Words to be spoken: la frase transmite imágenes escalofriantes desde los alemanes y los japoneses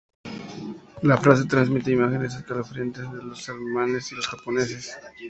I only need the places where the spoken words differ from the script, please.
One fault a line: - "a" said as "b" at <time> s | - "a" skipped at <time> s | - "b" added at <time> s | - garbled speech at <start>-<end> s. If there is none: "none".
- "desde" said as "de" at 3.1 s